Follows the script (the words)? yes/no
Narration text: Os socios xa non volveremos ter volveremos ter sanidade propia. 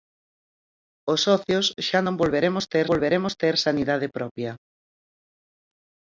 yes